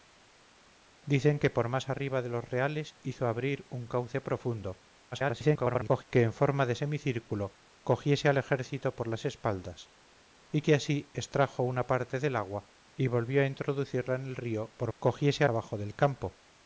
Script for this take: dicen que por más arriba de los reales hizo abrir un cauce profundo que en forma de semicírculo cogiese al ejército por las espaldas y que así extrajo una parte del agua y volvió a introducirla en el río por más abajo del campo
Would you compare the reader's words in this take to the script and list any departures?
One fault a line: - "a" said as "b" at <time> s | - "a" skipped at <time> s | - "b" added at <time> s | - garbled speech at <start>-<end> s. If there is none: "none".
- garbled speech at 5.1-6.0 s
- "más" said as "cogiese" at 15.0 s